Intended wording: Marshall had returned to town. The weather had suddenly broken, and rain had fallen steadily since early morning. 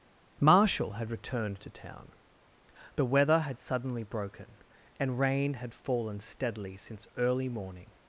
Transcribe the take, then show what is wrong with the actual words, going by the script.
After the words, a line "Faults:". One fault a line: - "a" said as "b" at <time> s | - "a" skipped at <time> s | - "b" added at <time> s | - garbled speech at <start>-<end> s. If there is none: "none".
Marshall had returned to town. The weather had suddenly broken, and rain had fallen steadily since early morning.
Faults:
none